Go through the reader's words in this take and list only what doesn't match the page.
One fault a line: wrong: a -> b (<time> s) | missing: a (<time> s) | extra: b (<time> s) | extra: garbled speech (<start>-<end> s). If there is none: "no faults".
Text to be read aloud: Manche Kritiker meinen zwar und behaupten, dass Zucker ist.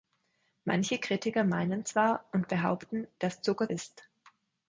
no faults